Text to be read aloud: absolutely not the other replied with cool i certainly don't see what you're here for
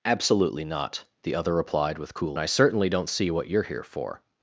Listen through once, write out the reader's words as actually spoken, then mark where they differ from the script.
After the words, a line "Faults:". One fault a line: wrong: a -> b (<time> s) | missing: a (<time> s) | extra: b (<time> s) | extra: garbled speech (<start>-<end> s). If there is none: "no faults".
absolutely not the other replied with cool i certainly don't see what you're here for
Faults:
no faults